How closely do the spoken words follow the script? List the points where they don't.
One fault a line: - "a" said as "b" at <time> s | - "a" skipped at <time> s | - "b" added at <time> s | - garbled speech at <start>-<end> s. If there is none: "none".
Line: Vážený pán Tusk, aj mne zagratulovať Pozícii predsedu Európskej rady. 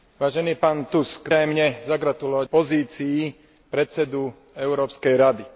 none